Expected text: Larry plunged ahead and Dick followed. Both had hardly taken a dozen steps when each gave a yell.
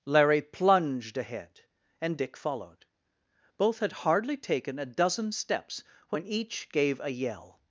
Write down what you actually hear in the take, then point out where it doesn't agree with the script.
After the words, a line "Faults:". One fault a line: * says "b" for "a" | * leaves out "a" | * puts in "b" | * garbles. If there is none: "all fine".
Larry plunged ahead and Dick followed. Both had hardly taken a dozen steps when each gave a yell.
Faults:
all fine